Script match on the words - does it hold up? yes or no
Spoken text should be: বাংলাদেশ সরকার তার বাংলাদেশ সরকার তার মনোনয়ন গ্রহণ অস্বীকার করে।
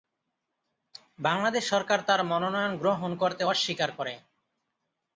no